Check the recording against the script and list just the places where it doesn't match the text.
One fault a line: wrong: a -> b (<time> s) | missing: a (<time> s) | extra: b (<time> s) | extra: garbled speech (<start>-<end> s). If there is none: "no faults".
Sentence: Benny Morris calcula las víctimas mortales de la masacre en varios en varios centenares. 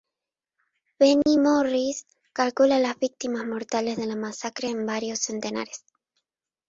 missing: en varios (5.2 s)